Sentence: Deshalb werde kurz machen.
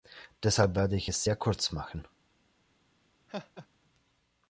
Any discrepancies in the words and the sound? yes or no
yes